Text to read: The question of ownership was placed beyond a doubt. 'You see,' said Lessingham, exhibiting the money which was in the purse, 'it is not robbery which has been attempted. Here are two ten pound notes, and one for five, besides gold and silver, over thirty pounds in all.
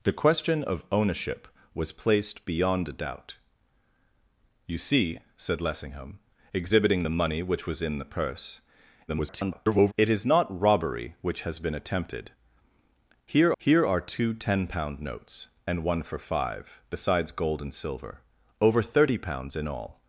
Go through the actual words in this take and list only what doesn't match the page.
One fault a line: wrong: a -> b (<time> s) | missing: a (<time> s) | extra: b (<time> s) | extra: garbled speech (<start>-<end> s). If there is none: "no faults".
extra: garbled speech (9.1-9.9 s)
extra: here (13.6 s)